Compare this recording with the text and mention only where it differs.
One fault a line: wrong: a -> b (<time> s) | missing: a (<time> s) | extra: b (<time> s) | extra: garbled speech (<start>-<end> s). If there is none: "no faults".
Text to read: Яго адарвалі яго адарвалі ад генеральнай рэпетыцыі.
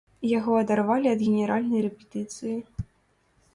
missing: яго адарвалі (1.1 s)